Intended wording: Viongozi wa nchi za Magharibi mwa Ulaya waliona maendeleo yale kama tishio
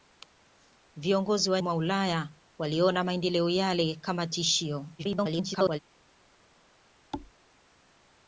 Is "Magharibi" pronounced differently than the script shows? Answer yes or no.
yes